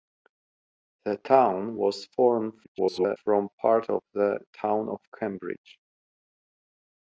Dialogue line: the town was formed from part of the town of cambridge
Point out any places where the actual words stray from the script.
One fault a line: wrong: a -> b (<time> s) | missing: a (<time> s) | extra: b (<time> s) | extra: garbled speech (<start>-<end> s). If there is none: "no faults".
extra: garbled speech (2.6-3.2 s)